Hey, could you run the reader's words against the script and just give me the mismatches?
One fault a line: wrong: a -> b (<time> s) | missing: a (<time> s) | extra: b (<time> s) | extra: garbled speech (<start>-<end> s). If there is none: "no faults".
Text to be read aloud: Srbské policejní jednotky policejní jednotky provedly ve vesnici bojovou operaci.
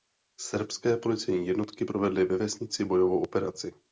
missing: policejní jednotky (1.9 s)